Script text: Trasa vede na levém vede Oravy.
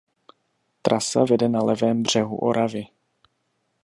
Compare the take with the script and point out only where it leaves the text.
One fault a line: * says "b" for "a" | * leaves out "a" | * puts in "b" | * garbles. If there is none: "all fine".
* says "břehu" for "vede"